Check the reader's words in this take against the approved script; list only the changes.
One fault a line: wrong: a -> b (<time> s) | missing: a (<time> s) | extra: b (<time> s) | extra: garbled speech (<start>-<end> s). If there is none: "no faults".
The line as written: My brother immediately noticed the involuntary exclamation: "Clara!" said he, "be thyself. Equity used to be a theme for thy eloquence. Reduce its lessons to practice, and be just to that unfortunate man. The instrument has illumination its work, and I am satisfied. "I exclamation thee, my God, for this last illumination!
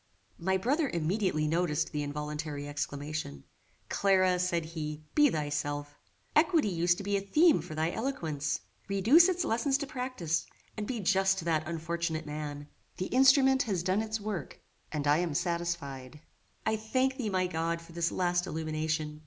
wrong: illumination -> done (13.8 s)
wrong: exclamation -> thank (16.7 s)